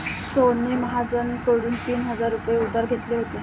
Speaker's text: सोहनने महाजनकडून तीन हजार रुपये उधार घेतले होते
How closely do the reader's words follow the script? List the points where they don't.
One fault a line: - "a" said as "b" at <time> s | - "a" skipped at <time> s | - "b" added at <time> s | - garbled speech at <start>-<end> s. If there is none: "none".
none